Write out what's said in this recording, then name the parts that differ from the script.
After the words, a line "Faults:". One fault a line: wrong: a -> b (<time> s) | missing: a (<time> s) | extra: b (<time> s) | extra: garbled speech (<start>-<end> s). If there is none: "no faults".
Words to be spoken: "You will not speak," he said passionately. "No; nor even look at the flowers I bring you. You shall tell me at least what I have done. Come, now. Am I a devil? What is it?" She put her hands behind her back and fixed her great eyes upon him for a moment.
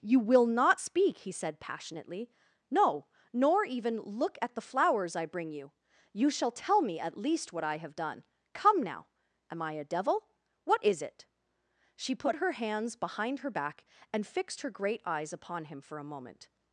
"You will not speak," he said passionately. "No; nor even look at the flowers I bring you. You shall tell me at least what I have done. Come, now. Am I a devil? What is it?" She put her hands behind her back and fixed her great eyes upon him for a moment.
Faults:
no faults